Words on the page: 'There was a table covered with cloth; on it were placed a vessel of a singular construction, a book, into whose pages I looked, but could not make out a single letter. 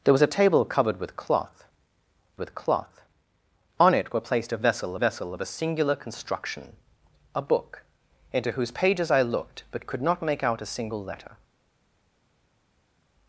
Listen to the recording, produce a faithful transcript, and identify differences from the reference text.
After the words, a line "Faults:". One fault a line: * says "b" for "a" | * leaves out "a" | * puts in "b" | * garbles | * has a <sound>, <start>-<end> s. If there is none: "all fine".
'There was a table covered with cloth with cloth; on it were placed a vessel vessel of a singular construction, a book, into whose pages I looked, but could not make out a single letter.
Faults:
* puts in "with cloth"
* puts in "vessel"